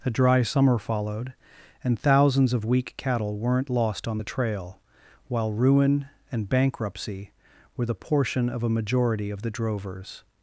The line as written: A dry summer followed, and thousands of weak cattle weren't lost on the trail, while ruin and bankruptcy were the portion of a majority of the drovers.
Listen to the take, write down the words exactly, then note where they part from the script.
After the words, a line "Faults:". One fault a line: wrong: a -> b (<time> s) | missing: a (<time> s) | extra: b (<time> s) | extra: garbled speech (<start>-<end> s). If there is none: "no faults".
A dry summer followed, and thousands of weak cattle weren't lost on the trail, while ruin and bankruptcy were the portion of a majority of the drovers.
Faults:
no faults